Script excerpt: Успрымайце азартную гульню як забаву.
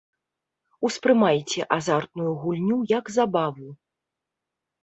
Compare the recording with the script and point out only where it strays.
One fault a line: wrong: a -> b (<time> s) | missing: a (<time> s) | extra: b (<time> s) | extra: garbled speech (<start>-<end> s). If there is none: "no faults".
no faults